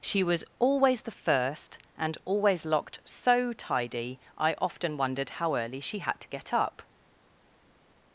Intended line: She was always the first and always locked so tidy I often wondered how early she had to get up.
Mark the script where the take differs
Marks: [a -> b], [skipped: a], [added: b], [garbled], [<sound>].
She was always the first and always locked so tidy I often wondered how early she had to get up.